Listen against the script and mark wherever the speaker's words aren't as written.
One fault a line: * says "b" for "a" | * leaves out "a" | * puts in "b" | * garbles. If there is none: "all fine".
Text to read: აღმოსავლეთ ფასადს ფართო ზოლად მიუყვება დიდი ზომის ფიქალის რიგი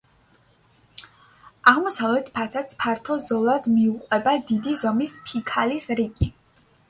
all fine